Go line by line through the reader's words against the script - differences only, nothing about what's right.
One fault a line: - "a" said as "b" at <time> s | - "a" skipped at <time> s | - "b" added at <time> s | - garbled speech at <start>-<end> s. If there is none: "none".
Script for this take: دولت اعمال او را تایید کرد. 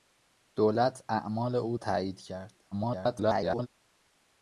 - "را" skipped at 1.8 s
- garbled speech at 2.7-3.7 s